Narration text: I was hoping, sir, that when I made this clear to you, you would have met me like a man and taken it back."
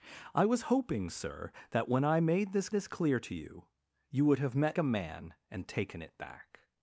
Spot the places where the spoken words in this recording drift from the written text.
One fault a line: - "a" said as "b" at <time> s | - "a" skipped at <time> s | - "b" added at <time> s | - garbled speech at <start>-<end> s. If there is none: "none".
- "this" added at 2.7 s
- "me like" skipped at 4.8 s